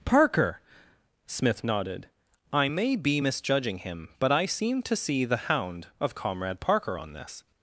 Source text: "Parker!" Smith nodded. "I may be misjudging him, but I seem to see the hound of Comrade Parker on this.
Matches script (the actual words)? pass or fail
pass